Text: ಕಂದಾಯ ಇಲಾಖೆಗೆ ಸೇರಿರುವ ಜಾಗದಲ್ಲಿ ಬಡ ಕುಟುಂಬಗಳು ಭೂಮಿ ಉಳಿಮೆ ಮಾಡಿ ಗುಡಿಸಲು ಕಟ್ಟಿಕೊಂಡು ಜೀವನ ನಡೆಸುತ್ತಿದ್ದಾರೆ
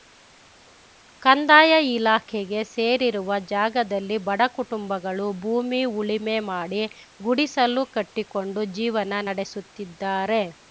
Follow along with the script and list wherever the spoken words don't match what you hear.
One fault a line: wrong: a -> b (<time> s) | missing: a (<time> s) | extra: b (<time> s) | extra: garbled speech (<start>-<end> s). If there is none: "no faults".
no faults